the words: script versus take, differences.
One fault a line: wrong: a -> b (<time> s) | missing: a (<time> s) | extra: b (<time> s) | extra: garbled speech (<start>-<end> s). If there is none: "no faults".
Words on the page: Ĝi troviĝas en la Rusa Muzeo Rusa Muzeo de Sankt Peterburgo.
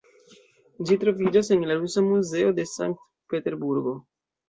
missing: Rusa Muzeo (2.6 s)